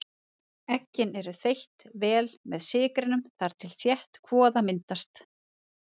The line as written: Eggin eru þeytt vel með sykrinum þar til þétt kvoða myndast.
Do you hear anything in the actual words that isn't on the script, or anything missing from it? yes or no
no